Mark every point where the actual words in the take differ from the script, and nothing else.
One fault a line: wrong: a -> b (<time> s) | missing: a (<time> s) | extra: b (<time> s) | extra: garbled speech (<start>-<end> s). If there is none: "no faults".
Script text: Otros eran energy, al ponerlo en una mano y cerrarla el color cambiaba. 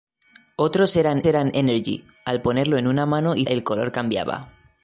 extra: eran (1.2 s)
missing: cerrarla (3.5 s)